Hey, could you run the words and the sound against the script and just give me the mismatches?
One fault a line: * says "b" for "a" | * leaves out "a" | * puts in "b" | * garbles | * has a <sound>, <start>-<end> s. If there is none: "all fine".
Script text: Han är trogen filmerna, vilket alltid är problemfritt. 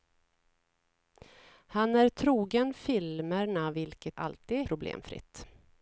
all fine